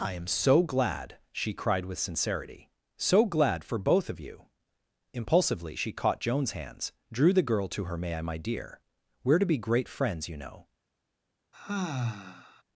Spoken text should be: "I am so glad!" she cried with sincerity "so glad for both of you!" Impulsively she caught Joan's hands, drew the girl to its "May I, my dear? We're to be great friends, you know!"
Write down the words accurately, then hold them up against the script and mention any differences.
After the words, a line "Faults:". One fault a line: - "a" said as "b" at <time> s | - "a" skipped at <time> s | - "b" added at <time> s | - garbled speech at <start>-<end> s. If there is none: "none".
"I am so glad!" she cried with sincerity "so glad for both of you!" Impulsively she caught Joan's hands, drew the girl to her "May I, my dear? We're to be great friends, you know!"
Faults:
- "its" said as "her" at 7.8 s